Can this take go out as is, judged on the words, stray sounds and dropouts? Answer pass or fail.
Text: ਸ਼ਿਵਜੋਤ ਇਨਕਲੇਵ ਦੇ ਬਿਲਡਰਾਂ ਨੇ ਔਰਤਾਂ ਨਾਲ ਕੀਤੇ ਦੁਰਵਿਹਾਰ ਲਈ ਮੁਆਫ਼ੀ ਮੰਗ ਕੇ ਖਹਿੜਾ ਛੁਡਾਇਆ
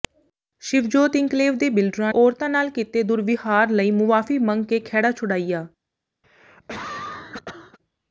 fail